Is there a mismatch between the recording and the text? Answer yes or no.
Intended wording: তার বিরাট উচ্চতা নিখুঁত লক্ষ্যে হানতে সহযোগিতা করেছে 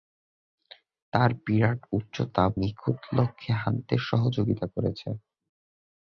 no